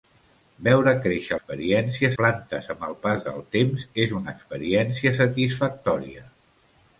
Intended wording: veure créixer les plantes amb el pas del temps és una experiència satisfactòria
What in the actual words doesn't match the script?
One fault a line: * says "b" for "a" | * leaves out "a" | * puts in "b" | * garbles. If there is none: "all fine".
* says "experiència" for "les"